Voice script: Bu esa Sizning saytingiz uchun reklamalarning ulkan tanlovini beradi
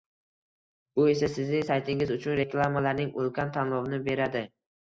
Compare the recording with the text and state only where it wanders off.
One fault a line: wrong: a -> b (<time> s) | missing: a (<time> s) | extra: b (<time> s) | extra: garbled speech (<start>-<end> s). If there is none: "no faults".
no faults